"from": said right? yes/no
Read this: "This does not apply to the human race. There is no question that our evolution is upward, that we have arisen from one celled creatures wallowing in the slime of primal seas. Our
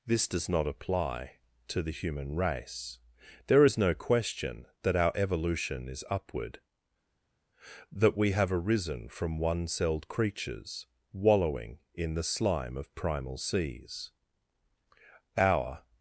yes